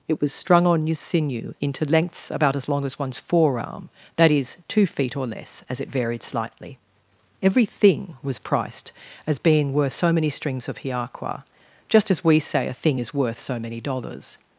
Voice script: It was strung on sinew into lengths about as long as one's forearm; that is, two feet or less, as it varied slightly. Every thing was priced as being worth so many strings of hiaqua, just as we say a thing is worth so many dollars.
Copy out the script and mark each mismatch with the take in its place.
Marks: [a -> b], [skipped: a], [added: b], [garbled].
It was strung on [added: your] sinew into lengths about as long as one's forearm; that is, two feet or less, as it varied slightly. Every thing was priced as being worth so many strings of hiaqua, just as we say a thing is worth so many dollars.